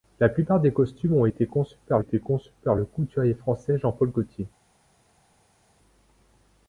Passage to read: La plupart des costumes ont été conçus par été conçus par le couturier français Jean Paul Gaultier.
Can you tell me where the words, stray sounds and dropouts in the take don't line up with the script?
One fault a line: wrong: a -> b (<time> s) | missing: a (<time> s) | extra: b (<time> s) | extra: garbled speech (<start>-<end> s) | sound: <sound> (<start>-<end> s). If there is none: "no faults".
no faults